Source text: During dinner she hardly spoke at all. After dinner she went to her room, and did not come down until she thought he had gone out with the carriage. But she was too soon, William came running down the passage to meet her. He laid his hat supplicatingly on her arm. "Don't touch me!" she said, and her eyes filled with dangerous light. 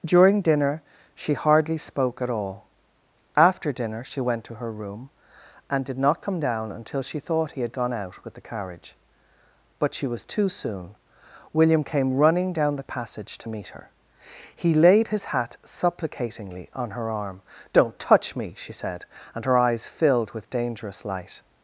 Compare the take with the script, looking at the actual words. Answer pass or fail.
pass